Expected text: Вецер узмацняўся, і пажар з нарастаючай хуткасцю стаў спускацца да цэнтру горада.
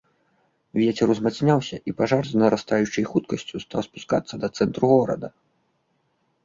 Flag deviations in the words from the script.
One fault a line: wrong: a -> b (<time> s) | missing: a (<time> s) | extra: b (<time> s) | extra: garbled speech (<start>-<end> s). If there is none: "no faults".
no faults